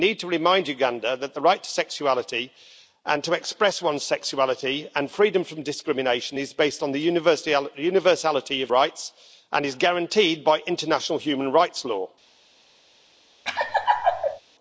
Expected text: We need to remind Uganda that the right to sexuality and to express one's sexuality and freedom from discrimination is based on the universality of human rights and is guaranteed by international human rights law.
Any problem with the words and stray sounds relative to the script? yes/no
yes